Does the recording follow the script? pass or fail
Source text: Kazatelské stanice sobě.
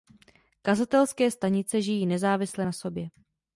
fail